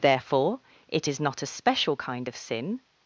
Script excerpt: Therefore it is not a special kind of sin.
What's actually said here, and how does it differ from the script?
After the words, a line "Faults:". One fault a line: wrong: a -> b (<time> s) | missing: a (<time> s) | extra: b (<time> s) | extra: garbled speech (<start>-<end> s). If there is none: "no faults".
Therefore it is not a special kind of sin.
Faults:
no faults